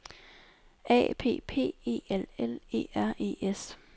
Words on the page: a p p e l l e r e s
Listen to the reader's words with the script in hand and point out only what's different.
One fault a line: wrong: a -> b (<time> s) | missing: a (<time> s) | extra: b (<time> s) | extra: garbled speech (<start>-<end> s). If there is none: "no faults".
no faults